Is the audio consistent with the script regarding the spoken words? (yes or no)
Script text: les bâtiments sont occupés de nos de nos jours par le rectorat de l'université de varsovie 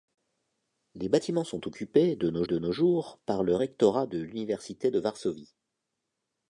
yes